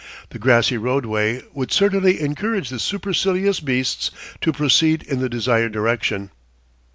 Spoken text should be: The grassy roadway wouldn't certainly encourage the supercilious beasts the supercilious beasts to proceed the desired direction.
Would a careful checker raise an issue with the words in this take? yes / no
yes